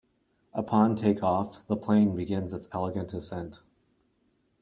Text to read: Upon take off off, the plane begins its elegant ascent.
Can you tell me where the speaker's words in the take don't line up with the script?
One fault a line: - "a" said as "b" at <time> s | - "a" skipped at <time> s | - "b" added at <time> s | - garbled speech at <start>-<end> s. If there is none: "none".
- "off" skipped at 1.7 s